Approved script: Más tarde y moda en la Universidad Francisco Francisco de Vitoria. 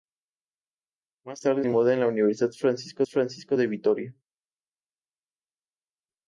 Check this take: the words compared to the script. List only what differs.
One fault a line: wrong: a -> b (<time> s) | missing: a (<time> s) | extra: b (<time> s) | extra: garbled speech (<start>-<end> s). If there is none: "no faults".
no faults